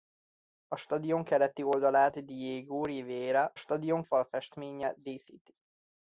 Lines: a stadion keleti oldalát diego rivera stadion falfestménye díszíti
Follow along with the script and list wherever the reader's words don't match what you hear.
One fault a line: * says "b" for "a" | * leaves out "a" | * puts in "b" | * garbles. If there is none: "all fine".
all fine